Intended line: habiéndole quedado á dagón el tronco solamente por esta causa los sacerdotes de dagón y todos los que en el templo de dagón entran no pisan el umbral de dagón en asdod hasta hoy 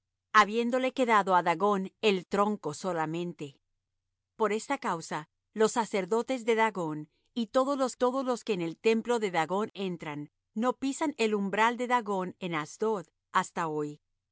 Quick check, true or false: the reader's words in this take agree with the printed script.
false